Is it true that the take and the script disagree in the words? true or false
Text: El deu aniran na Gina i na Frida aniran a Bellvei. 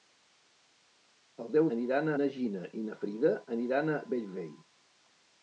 false